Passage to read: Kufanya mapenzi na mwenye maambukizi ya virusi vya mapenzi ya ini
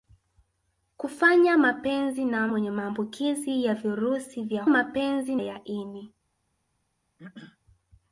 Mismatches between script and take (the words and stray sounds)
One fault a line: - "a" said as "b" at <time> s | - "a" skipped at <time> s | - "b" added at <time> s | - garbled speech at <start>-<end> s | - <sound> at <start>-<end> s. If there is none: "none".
- throat clearing at 7.2-7.6 s